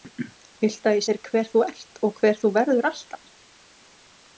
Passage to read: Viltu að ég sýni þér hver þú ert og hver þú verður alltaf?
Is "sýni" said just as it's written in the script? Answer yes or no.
no